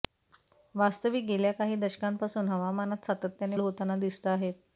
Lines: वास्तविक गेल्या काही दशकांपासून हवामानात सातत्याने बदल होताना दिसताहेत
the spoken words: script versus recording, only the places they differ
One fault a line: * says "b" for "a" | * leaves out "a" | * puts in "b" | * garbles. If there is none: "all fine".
* leaves out "बदल"